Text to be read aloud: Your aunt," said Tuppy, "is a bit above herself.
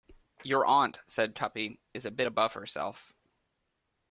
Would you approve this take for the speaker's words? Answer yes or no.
yes